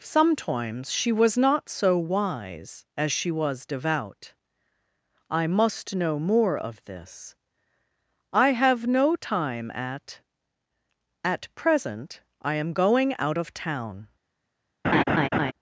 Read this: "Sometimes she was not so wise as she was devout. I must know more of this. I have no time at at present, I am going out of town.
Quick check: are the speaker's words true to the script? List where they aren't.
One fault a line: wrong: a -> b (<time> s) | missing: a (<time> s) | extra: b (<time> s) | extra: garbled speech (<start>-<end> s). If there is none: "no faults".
no faults